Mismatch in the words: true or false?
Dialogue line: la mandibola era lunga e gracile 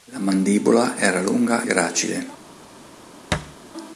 true